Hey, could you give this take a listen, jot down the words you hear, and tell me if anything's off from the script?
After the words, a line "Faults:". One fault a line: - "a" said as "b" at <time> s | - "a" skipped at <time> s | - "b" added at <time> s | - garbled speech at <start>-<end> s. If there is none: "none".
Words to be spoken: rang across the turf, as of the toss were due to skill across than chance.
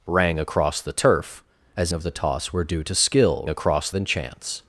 rang across the turf, as of the toss were due to skill across than chance.
Faults:
none